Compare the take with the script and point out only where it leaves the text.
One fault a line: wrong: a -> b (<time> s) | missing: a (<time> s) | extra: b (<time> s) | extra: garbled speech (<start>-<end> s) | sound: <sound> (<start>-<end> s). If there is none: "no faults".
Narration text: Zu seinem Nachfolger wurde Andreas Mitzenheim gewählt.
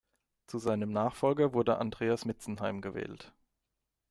no faults